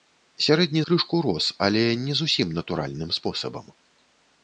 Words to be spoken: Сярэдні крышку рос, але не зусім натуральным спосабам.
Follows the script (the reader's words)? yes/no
yes